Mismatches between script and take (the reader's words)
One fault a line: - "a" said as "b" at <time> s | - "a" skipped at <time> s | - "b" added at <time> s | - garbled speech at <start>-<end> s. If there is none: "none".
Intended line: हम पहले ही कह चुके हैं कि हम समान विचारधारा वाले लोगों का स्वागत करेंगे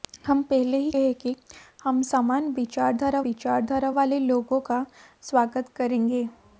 - "कह चुके" skipped at 0.9 s
- "विचारधारा" added at 3.2 s